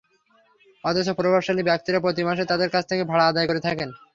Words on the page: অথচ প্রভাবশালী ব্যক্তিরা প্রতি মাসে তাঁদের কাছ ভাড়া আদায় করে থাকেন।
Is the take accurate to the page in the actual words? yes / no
no